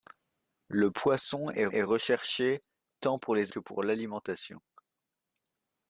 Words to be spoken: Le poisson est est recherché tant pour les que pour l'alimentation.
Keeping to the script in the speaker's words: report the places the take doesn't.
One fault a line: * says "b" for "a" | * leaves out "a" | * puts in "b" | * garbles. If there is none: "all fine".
all fine